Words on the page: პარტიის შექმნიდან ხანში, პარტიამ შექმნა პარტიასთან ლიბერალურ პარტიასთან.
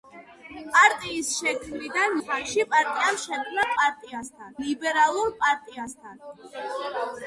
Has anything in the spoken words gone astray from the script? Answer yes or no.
no